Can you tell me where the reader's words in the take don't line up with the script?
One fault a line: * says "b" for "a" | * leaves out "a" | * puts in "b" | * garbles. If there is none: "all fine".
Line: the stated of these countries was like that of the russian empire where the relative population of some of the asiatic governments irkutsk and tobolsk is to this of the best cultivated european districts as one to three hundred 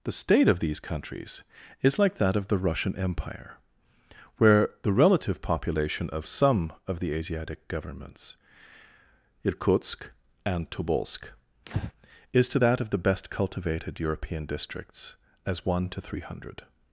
* says "state" for "stated"
* says "is" for "was"
* says "that" for "this"